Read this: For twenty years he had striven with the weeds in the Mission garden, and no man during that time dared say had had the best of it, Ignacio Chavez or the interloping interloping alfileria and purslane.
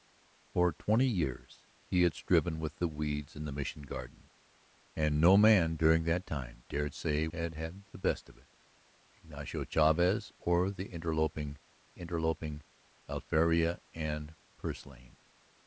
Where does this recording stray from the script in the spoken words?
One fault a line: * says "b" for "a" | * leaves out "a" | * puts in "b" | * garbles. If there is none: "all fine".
all fine